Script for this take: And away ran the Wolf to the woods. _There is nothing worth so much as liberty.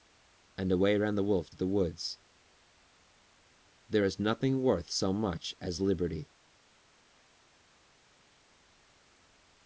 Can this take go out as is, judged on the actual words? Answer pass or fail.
pass